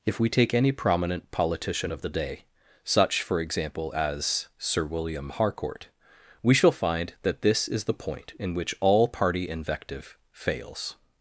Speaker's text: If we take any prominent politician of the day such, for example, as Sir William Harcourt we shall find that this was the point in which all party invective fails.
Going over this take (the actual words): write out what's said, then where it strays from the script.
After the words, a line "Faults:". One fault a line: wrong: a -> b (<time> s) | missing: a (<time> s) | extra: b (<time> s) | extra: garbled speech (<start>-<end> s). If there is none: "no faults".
If we take any prominent politician of the day such, for example, as Sir William Harcourt we shall find that this is the point in which all party invective fails.
Faults:
wrong: was -> is (7.7 s)